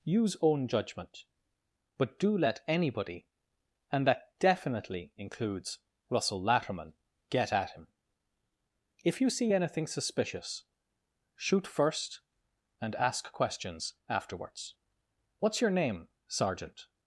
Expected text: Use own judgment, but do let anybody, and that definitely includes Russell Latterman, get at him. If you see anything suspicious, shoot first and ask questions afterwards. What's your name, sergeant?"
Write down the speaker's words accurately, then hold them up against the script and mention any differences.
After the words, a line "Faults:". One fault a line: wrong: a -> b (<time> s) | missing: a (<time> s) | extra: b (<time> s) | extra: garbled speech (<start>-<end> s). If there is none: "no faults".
Use own judgment, but do let anybody, and that definitely includes Russell Latterman, get at him. If you see anything suspicious, shoot first and ask questions afterwards. What's your name, sergeant?"
Faults:
no faults